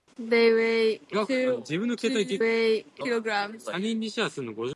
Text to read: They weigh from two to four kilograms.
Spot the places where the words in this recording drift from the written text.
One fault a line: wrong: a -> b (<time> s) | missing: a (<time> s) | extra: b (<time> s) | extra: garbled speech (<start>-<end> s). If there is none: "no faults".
missing: from (1.0 s)
wrong: four -> weigh (2.4 s)